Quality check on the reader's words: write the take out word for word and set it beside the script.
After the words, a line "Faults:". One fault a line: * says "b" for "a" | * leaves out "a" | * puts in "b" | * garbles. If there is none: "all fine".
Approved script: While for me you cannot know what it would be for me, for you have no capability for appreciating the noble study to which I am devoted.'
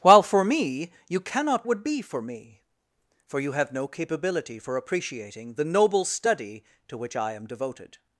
While for me you cannot would be for me, for you have no capability for appreciating the noble study to which I am devoted.'
Faults:
* leaves out "know what it"